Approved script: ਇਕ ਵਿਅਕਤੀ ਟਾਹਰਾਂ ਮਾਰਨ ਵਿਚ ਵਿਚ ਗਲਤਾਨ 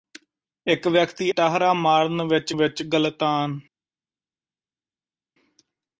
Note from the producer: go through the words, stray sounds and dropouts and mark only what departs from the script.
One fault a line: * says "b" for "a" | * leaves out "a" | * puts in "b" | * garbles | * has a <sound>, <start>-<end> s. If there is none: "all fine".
all fine